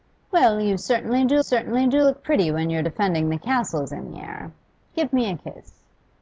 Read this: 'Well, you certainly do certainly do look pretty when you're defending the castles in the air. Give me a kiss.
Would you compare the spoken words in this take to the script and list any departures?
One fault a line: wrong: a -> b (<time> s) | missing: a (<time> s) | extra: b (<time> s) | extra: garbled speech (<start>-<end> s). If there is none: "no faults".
no faults